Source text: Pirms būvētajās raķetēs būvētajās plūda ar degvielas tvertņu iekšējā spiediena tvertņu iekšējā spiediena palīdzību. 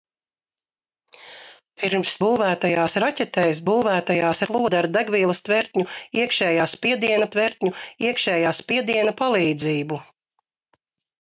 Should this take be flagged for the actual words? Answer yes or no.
no